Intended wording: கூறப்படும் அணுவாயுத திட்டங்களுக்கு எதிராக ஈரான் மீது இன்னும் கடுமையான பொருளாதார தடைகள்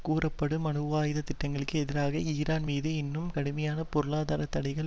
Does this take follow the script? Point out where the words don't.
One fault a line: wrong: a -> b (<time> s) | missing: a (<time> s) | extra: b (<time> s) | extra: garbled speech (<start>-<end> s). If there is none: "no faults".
no faults